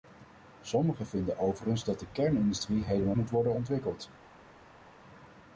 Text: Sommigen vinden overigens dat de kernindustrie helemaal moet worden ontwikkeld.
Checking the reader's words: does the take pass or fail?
pass